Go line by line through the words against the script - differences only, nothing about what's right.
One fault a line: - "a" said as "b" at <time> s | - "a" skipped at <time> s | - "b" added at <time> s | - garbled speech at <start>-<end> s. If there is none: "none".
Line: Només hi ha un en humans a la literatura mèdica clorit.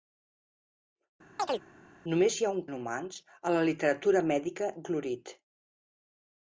none